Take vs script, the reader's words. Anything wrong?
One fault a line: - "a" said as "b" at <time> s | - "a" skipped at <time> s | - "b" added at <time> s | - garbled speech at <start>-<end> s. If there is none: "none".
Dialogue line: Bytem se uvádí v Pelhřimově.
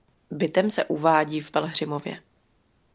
none